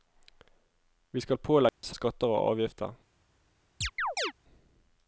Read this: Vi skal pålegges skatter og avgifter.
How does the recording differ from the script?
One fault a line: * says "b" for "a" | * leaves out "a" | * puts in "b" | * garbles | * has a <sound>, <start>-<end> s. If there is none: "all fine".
* has a dropout, 1.7-1.8 s
* has a chirp, 3.8-4.3 s